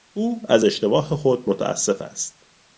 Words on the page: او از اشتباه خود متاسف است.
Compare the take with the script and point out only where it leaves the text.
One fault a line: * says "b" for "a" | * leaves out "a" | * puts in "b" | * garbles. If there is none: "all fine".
all fine